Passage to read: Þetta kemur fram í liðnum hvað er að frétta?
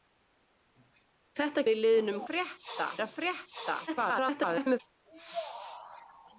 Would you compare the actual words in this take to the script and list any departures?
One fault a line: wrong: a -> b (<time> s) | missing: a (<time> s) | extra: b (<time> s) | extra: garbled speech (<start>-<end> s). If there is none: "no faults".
missing: kemur fram (1.6 s)
wrong: hvað -> frétta (2.3 s)
extra: garbled speech (3.9-4.8 s)